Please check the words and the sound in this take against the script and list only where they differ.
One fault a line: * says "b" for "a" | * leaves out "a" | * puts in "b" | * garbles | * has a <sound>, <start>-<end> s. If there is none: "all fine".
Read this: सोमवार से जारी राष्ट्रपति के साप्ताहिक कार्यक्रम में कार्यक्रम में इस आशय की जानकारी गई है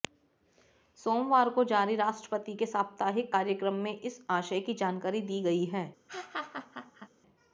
* says "को" for "से"
* leaves out "कार्यक्रम में"
* puts in "दी"
* has a laugh, 6.1-7.1 s